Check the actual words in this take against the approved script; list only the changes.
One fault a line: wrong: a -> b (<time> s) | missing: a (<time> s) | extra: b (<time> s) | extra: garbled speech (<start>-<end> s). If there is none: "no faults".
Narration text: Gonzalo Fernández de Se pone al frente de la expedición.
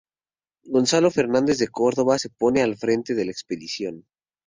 extra: Córdoba (1.7 s)